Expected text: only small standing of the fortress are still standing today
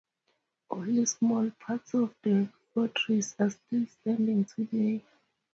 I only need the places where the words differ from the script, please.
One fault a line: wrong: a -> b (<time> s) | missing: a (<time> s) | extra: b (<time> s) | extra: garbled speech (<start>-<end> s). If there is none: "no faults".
wrong: standing -> parts (1.6 s)